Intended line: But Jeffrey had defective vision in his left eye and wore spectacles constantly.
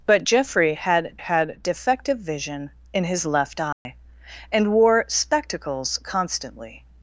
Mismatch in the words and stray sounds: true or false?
true